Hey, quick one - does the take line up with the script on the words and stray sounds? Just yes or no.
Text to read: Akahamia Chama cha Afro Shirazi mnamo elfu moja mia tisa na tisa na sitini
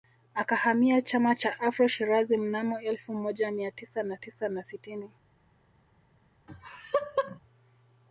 no